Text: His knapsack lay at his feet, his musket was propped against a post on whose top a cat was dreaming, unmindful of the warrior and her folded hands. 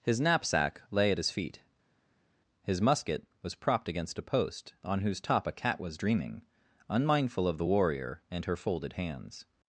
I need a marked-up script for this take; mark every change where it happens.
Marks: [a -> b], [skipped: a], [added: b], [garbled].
His knapsack lay at his feet, his musket was propped against a post on whose top a cat was dreaming, unmindful of the warrior and her folded hands.